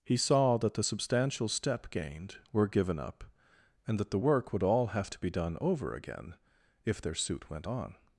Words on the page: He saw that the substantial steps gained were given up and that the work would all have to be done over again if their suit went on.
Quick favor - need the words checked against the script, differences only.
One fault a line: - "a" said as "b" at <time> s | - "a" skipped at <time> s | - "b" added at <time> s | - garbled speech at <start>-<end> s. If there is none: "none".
- "steps" said as "step" at 1.5 s